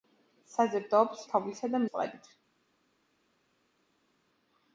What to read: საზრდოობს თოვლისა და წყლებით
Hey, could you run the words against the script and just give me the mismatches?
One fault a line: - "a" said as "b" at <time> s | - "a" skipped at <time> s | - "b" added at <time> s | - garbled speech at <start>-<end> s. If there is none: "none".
none